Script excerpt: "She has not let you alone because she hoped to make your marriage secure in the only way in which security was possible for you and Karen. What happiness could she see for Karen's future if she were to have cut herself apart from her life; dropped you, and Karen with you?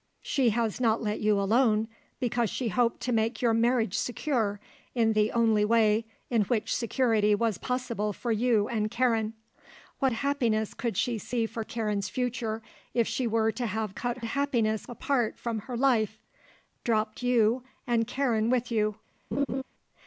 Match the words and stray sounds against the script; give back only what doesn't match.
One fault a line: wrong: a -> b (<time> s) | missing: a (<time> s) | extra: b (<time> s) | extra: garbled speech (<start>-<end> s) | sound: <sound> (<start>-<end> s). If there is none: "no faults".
wrong: herself -> happiness (14.3 s)
sound: laugh (19.3-19.6 s)